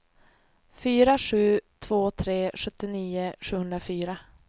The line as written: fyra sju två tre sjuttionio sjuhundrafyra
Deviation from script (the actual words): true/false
false